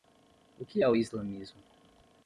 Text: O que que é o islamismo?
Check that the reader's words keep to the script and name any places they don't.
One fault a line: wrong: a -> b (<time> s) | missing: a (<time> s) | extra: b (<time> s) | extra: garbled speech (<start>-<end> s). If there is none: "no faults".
missing: que (0.8 s)